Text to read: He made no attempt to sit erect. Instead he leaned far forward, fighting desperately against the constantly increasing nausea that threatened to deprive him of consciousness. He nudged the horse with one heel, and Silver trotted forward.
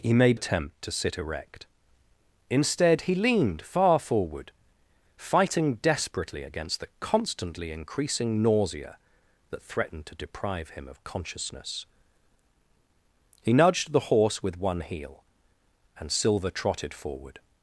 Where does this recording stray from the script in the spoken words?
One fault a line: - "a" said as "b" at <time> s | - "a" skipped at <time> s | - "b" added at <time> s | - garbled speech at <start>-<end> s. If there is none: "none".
- "no" skipped at 0.4 s